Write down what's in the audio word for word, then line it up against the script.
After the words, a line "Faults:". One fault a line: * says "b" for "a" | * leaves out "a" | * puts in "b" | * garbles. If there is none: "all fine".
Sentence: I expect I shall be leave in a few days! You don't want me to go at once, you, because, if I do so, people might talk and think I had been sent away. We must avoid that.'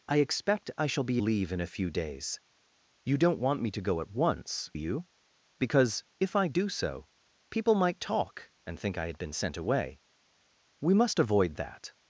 I expect I shall be leave in a few days! You don't want me to go at once, you, because, if I do so, people might talk and think I had been sent away. We must avoid that.'
Faults:
all fine